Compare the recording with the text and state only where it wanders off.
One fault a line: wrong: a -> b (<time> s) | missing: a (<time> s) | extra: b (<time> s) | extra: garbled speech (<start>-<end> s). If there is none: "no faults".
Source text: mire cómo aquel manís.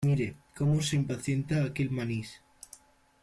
extra: se impacienta (0.8 s)